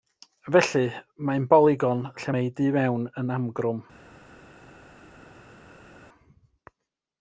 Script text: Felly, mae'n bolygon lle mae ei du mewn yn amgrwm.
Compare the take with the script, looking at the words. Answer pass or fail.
pass